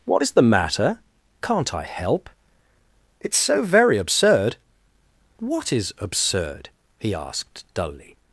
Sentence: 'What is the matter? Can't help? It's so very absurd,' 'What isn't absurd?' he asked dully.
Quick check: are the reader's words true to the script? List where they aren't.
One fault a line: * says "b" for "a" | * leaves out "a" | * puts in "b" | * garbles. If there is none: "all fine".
* puts in "I"
* says "is" for "isn't"